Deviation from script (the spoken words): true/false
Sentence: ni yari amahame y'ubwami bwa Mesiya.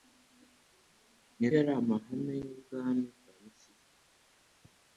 false